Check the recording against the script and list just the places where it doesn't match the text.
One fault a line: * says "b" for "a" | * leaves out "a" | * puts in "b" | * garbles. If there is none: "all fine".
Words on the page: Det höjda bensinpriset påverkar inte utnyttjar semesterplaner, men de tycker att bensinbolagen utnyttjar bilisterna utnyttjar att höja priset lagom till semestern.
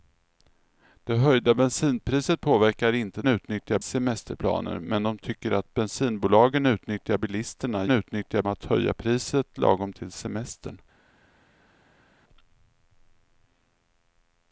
all fine